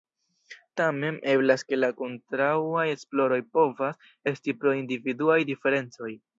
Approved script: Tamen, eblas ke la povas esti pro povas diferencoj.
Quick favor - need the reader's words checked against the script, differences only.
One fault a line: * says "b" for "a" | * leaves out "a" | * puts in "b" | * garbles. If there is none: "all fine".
* puts in "kontraŭaj esploroj"
* says "individuaj" for "povas"